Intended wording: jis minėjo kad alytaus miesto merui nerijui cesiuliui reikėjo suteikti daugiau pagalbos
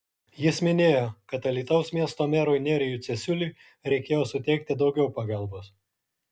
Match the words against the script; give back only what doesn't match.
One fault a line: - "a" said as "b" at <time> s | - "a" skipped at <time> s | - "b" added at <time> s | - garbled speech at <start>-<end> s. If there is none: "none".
none